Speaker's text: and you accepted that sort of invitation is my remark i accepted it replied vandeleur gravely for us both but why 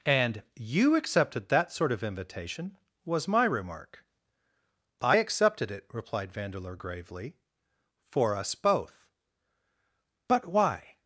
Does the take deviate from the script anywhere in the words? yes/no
yes